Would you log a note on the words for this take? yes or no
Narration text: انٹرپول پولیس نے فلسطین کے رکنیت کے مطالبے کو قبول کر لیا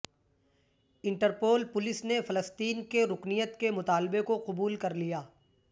no